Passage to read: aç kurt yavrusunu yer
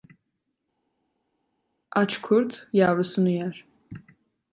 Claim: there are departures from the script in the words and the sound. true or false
false